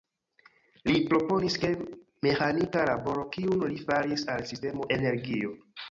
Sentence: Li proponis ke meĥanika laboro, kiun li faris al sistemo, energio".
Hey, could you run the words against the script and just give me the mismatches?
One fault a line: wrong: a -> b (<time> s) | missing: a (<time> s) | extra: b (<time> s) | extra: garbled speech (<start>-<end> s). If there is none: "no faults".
no faults